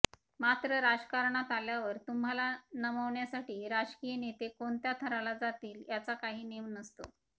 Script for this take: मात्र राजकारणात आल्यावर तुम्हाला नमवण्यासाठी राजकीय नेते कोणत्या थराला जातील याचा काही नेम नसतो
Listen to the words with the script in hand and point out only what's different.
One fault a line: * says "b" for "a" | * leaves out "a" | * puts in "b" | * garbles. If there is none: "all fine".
all fine